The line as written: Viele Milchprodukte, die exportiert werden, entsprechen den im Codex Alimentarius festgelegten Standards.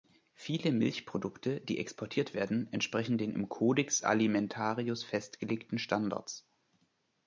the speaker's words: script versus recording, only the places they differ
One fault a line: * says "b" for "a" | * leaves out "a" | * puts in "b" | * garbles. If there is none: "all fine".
all fine